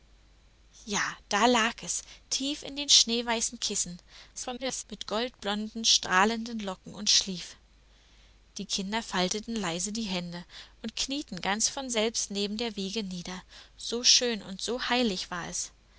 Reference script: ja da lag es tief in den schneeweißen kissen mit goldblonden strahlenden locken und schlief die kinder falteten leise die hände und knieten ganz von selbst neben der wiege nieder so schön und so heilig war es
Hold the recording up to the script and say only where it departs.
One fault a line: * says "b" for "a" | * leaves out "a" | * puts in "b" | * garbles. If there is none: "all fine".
* garbles